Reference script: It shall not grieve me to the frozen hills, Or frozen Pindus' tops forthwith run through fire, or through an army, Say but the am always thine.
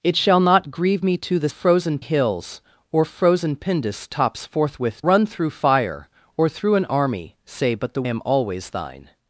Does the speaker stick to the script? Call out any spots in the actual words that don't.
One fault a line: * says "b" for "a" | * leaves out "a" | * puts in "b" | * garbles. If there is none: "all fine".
all fine